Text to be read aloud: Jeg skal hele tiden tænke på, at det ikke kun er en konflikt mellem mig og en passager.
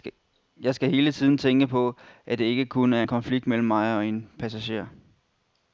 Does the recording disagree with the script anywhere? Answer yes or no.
no